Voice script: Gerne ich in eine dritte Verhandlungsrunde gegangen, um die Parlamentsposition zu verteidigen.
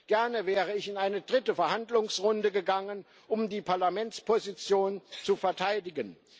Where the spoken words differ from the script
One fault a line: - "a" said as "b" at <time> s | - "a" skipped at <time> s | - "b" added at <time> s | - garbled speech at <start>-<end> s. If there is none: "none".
- "wäre" added at 0.5 s